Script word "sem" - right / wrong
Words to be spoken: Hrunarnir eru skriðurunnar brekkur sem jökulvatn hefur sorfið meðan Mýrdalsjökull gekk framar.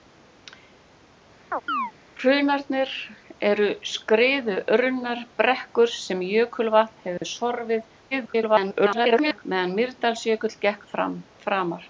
right